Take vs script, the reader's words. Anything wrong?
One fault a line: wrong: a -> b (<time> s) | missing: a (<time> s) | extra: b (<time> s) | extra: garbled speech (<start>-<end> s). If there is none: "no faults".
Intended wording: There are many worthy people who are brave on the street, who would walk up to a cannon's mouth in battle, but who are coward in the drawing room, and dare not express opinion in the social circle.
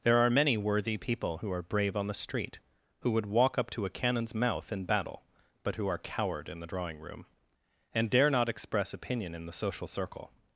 no faults